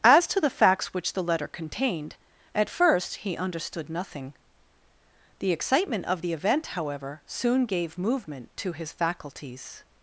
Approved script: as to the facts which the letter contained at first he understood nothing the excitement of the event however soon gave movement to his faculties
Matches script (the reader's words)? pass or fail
pass